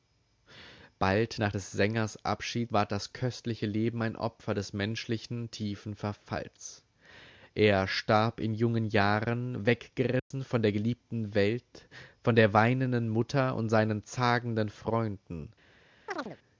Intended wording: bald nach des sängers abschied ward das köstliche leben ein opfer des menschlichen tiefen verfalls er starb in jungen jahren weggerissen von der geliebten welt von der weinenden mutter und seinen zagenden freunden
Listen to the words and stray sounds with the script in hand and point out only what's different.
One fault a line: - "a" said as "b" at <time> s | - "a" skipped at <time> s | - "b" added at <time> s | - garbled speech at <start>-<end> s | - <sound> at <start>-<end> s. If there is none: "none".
- dropout at 10.2-10.3 s
- chirp at 16.1-16.4 s